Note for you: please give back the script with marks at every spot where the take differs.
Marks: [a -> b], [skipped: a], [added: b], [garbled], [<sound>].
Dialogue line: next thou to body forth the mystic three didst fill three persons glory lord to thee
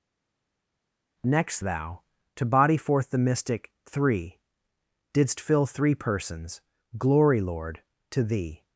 next thou to body forth the mystic three didst fill three persons glory lord to thee